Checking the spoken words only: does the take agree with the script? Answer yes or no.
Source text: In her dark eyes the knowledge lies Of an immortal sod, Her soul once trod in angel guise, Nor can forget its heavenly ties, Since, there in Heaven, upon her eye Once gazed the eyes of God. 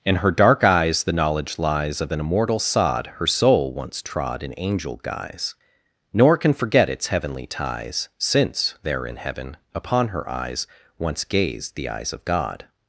no